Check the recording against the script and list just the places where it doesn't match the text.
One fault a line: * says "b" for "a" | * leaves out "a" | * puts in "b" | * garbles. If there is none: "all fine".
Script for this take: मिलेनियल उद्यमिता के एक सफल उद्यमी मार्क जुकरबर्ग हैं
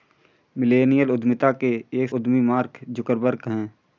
* leaves out "सफल"